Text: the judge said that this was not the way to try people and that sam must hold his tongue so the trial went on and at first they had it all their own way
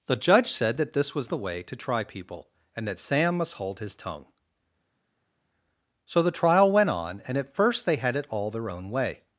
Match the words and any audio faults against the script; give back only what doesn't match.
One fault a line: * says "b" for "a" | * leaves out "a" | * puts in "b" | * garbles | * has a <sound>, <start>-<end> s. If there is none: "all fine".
* leaves out "not"